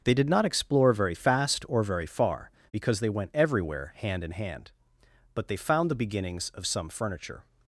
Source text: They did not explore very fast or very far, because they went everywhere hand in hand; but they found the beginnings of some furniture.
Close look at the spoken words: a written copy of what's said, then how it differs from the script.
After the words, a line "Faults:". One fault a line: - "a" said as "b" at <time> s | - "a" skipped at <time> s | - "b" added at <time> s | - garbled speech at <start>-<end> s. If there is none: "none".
They did not explore very fast or very far, because they went everywhere hand in hand; but they found the beginnings of some furniture.
Faults:
none